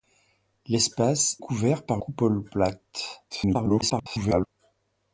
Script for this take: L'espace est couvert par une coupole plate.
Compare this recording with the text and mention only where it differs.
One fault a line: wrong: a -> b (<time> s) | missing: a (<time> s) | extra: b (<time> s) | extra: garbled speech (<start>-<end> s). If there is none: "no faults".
missing: est (1.4 s)
missing: une (2.0 s)
extra: garbled speech (3.3-4.5 s)